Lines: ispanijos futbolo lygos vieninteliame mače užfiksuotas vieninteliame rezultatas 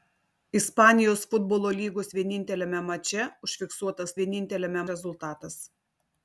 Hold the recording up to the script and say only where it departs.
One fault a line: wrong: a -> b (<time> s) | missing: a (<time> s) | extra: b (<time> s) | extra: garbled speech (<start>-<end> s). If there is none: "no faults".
no faults